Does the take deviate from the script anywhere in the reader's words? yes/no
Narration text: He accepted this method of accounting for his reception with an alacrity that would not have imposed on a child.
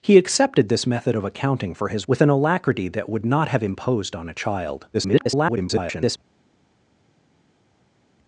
yes